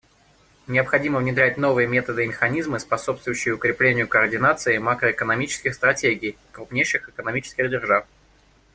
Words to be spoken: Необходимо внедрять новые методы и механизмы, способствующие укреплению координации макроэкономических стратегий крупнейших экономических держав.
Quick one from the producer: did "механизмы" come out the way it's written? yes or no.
yes